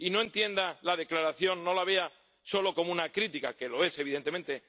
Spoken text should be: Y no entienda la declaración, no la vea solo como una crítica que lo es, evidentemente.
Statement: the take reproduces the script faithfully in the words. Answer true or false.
true